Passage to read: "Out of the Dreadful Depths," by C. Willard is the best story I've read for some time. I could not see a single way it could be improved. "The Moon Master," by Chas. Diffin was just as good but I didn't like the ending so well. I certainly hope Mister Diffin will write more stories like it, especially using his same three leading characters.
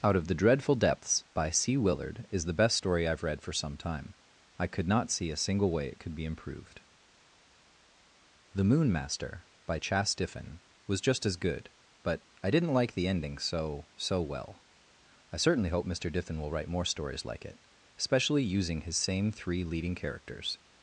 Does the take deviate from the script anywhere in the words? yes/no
yes